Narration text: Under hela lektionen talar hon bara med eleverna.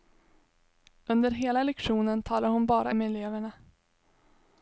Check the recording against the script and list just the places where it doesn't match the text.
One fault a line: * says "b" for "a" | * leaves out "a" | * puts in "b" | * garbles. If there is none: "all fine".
all fine